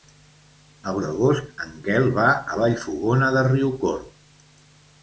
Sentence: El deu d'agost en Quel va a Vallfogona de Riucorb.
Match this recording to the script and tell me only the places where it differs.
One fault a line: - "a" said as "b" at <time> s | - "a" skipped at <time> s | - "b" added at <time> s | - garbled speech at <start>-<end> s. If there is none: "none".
- "deu" skipped at 0.9 s